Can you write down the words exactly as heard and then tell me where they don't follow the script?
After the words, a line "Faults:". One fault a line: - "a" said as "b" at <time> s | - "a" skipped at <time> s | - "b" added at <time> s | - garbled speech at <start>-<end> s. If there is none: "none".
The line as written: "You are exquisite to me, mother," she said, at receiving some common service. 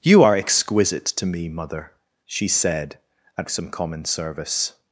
"You are exquisite to me, mother," she said, at some common service.
Faults:
- "receiving" skipped at 3.5 s